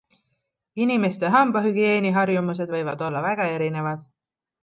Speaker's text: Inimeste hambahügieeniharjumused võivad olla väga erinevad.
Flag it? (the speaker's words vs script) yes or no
no